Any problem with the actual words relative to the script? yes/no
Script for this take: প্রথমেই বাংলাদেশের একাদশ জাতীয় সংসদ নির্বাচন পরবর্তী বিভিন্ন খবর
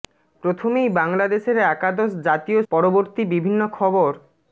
yes